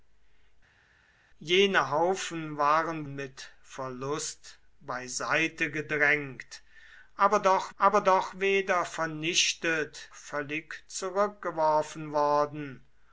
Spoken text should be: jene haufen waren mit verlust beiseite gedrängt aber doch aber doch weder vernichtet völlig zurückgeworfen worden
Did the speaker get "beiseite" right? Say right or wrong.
right